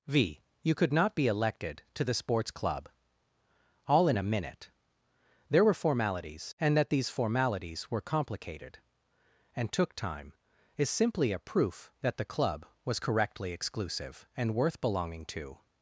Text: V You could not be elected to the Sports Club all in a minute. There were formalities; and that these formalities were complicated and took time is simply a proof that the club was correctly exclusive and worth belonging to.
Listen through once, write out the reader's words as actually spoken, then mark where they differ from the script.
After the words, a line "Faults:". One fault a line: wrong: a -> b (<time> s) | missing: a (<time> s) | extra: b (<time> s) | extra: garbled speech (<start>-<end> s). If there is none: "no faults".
V You could not be elected to the Sports Club all in a minute. There were formalities; and that these formalities were complicated and took time is simply a proof that the club was correctly exclusive and worth belonging to.
Faults:
no faults